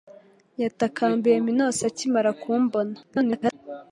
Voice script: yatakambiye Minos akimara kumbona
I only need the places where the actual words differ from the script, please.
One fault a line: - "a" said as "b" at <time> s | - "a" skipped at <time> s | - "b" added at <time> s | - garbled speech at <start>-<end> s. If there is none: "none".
- garbled speech at 3.0-3.5 s